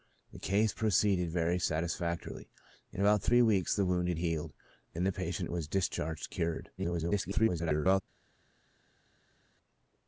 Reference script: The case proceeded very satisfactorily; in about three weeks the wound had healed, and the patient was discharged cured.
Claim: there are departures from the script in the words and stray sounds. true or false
true